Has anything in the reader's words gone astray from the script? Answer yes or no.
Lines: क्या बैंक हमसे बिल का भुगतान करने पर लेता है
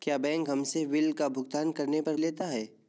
no